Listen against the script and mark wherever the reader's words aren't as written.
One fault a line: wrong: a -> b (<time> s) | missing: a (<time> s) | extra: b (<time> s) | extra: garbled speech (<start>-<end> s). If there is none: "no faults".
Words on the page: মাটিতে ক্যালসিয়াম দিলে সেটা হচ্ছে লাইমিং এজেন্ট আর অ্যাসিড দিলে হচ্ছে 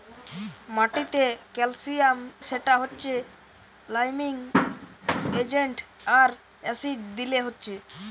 missing: দিলে (2.2 s)